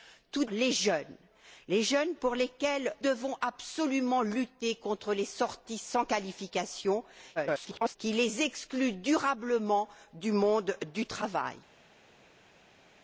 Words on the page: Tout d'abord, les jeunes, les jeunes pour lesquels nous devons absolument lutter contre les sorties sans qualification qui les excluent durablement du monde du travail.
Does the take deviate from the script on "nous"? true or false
true